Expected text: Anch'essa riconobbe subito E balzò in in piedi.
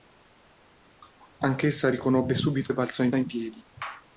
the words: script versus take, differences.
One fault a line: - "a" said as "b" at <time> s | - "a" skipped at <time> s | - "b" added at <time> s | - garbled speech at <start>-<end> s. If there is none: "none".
none